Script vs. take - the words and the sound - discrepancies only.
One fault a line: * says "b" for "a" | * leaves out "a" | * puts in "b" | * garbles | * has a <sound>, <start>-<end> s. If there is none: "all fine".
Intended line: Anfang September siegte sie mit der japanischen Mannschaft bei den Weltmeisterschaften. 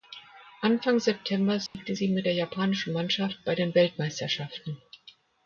* has a dropout, 1.7-1.7 s